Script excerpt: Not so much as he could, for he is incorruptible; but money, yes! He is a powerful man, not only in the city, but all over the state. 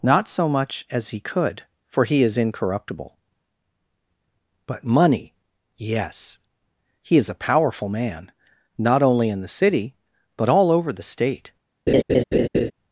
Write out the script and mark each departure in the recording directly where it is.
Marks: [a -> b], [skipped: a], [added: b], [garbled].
Not so much as he could, for he is incorruptible; but money, yes! He is a powerful man, not only in the city, but all over the state.